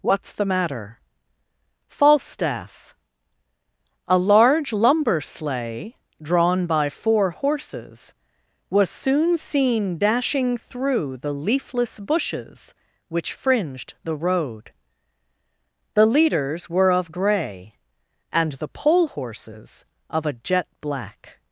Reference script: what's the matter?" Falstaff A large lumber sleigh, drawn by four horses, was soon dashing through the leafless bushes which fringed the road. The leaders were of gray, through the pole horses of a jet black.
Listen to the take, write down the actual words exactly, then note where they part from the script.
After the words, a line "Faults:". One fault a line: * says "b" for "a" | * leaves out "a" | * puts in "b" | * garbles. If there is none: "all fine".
what's the matter?" Falstaff A large lumber sleigh, drawn by four horses, was soon seen dashing through the leafless bushes which fringed the road. The leaders were of gray, and the pole horses of a jet black.
Faults:
* puts in "seen"
* says "and" for "through"